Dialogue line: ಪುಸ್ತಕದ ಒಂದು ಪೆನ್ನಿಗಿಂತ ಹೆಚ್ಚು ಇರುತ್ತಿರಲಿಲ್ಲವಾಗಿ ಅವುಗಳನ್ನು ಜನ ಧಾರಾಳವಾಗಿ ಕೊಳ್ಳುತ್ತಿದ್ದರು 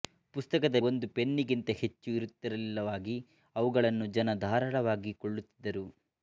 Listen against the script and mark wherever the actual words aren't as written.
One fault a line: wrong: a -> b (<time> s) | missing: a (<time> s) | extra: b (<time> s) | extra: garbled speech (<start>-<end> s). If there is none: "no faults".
no faults